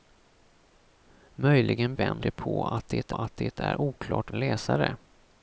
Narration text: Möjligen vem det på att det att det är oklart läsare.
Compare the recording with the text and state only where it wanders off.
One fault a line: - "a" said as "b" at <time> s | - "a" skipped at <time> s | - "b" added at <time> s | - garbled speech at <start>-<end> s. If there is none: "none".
none